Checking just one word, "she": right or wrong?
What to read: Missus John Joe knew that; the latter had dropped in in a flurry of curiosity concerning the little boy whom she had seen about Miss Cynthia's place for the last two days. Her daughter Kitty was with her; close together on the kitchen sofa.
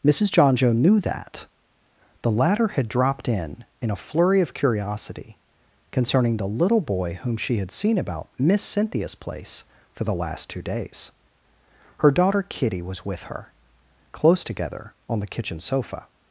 right